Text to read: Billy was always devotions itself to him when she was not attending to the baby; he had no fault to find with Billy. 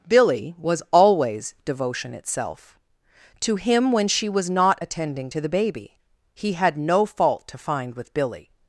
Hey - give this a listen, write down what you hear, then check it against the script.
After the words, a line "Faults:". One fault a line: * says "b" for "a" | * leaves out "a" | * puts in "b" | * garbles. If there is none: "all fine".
Billy was always devotion itself to him when she was not attending to the baby; he had no fault to find with Billy.
Faults:
* says "devotion" for "devotions"